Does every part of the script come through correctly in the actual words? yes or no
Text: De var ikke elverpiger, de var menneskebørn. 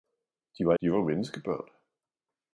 no